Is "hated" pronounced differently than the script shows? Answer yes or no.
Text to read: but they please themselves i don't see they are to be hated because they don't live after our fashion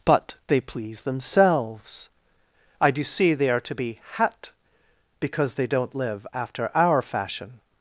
yes